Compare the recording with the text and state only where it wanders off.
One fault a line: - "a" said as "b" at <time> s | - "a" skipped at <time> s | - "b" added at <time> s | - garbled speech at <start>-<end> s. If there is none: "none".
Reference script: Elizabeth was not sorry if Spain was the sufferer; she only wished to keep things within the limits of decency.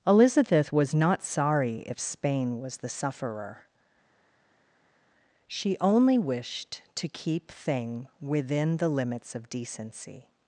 - "things" said as "thing" at 7.5 s